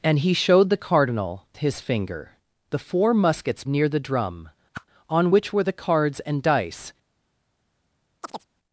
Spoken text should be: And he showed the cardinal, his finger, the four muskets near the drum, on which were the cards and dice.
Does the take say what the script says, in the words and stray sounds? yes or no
no